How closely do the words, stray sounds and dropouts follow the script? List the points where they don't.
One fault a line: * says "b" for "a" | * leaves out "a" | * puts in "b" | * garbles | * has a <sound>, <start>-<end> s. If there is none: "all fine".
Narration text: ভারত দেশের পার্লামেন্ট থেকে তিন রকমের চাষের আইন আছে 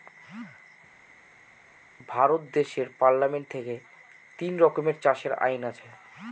all fine